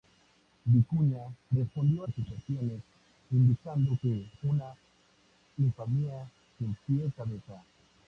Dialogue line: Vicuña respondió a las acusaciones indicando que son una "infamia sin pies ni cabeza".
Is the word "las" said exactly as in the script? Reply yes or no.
no